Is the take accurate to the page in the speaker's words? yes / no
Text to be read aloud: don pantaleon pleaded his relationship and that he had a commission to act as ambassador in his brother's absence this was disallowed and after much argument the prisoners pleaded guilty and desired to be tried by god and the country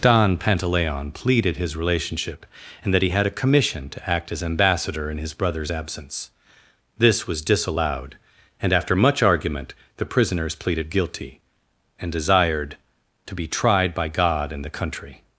yes